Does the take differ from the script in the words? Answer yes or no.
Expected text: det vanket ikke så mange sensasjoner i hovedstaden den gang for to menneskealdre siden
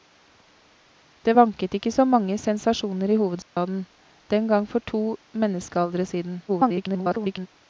yes